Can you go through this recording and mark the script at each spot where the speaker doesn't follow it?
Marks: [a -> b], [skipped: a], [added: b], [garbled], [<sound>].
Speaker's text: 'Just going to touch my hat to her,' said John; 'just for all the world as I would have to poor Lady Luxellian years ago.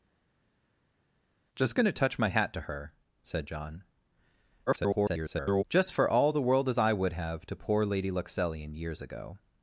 'Just going to touch my hat to her,' said John; [garbled] 'just for all the world as I would have to poor Lady Luxellian years ago.